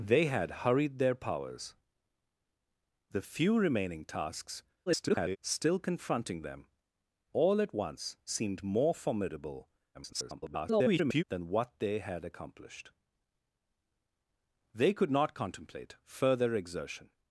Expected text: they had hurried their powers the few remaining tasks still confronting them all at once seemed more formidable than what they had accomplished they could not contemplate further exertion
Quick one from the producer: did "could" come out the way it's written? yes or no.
yes